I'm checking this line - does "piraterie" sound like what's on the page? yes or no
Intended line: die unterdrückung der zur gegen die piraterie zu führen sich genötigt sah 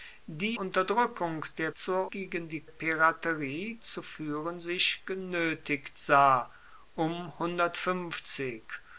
yes